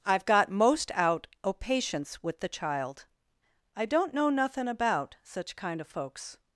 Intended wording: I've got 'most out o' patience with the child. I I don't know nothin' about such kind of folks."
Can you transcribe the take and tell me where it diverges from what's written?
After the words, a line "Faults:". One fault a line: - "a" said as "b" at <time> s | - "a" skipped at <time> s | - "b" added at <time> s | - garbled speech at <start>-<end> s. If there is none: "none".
I've got 'most out o' patience with the child. I don't know nothin' about such kind of folks."
Faults:
- "I" skipped at 3.9 s